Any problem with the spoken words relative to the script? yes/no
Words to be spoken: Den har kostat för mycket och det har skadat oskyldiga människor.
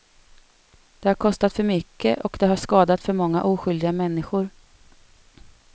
yes